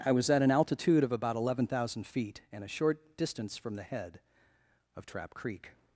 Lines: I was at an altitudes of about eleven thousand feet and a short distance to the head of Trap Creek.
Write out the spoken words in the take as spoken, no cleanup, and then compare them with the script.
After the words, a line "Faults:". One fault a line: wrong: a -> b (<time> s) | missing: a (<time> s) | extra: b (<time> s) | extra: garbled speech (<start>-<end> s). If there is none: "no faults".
I was at an altitude of about eleven thousand feet and a short distance from the head of Trap Creek.
Faults:
wrong: altitudes -> altitude (0.5 s)
wrong: to -> from (3.6 s)